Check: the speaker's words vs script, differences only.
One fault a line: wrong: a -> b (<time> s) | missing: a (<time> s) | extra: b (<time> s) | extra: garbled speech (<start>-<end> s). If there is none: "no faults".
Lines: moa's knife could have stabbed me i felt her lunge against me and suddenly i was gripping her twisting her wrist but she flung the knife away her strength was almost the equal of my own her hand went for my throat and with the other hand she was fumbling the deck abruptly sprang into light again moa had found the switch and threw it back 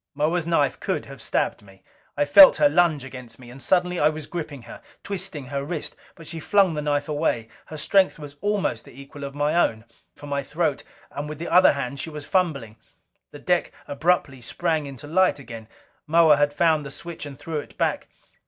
missing: her hand went (9.8 s)